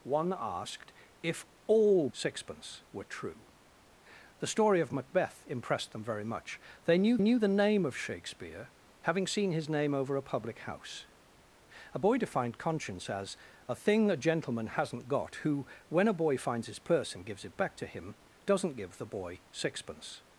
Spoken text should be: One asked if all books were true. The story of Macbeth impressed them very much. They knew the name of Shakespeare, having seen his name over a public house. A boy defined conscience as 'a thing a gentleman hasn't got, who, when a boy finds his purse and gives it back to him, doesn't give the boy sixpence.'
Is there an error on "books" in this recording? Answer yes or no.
yes